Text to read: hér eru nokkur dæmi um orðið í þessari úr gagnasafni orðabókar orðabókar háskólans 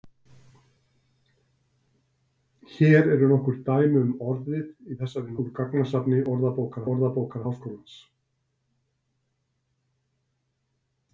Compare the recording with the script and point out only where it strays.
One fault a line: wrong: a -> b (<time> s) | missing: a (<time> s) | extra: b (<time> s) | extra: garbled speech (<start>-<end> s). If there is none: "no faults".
no faults